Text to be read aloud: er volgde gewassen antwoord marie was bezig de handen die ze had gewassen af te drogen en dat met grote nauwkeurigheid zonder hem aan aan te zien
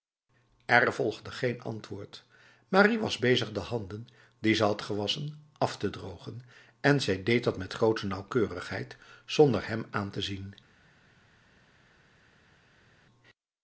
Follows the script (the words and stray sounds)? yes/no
no